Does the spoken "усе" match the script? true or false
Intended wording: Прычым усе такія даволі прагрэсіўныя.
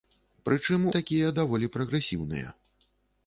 false